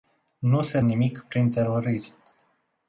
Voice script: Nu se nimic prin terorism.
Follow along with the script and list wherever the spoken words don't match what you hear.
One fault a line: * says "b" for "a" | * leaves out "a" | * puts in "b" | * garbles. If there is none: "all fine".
all fine